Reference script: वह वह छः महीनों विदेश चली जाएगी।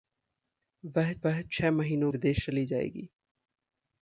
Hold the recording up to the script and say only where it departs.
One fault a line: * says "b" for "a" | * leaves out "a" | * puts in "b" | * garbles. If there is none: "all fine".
all fine